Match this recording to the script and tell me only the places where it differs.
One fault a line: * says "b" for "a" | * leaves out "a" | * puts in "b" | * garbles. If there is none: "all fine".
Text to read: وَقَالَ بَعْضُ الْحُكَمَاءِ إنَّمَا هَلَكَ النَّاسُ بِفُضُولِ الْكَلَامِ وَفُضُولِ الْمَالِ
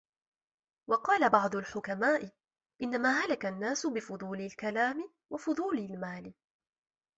all fine